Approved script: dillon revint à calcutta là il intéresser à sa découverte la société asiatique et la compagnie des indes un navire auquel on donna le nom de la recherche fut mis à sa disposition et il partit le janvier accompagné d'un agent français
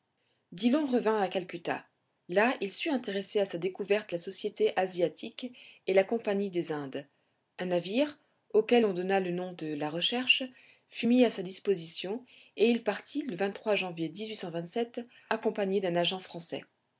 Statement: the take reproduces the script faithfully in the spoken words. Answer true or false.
false